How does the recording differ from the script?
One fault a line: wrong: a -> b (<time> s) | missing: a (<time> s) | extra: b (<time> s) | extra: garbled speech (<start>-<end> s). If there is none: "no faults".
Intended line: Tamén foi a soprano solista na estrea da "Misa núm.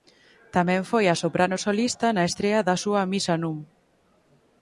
extra: súa (2.8 s)